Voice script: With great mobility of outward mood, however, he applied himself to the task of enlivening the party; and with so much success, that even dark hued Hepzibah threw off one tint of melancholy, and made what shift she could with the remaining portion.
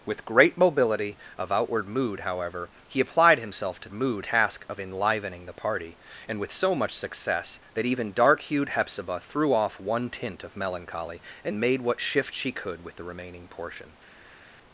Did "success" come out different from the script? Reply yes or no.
no